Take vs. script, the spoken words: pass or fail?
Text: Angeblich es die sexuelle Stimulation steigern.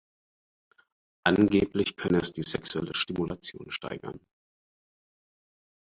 fail